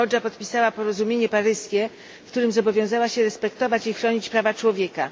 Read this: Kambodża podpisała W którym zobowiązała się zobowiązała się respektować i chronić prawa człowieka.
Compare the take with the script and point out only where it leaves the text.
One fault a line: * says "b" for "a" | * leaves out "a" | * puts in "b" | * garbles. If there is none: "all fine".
* puts in "Porozumienie Paryskie"
* leaves out "zobowiązała się"